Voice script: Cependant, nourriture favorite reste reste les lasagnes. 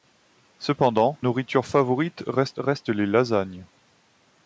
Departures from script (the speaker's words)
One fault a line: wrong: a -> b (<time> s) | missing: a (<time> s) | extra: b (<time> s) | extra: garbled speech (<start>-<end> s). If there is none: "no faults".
no faults